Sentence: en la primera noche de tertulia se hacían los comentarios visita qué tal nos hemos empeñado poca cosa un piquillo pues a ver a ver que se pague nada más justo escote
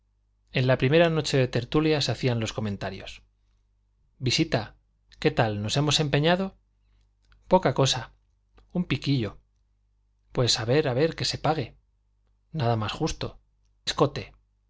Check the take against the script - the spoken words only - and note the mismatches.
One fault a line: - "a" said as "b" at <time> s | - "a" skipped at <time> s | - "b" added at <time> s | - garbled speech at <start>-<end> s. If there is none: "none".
none